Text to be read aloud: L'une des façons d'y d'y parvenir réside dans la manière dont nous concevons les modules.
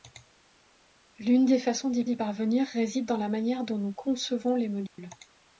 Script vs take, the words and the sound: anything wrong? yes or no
yes